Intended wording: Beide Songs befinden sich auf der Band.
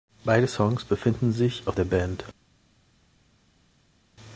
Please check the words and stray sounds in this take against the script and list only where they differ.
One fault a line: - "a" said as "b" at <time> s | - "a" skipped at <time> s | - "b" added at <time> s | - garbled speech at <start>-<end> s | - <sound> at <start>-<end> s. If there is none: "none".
none